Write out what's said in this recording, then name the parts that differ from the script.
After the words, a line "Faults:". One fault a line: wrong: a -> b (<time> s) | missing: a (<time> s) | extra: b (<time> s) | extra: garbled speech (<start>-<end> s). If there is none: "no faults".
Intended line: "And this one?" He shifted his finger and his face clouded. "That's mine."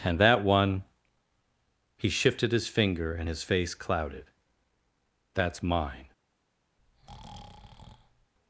"And that one?" He shifted his finger and his face clouded. "That's mine."
Faults:
wrong: this -> that (0.2 s)